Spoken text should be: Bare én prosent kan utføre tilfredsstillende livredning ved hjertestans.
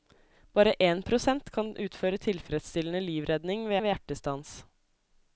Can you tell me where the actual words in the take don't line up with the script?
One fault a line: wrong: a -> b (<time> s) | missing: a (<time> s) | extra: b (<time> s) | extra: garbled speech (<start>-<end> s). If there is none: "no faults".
extra: ved (3.8 s)